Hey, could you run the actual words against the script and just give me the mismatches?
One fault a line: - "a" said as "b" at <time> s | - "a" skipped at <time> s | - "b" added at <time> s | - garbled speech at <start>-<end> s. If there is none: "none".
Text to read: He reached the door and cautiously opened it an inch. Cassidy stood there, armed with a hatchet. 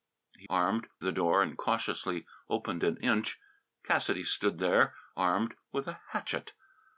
- "reached" said as "armed" at 0.5 s
- "an" skipped at 3.0 s